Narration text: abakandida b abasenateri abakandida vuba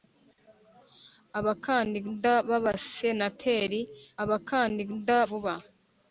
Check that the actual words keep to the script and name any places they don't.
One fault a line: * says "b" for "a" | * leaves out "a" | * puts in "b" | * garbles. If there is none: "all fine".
all fine